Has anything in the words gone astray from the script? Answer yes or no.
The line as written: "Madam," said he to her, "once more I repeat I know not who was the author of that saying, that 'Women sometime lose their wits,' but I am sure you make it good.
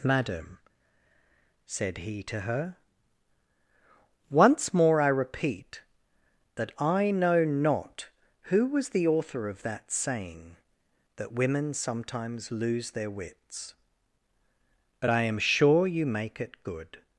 yes